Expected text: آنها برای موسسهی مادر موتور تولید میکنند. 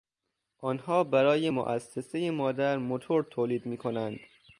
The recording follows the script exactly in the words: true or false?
true